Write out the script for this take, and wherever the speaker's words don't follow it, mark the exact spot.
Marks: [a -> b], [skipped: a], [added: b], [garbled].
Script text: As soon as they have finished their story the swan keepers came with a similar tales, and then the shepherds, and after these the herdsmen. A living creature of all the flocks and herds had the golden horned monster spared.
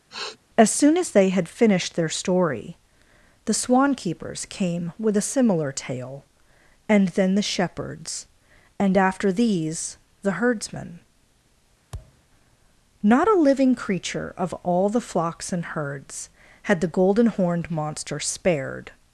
As soon as they [have -> had] finished their story the swan keepers came with a similar [tales, -> tale] and then the shepherds, and after these the herdsmen. [added: Not] A living creature of all the flocks and herds had the golden horned monster spared.